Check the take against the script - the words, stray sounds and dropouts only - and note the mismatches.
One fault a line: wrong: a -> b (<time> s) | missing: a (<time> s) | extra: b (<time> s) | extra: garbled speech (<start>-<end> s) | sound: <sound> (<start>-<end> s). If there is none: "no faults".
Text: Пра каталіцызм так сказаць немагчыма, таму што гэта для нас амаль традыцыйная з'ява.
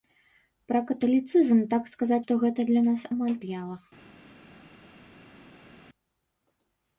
missing: немагчыма таму (2.2 s)
missing: традыцыйная (3.4 s)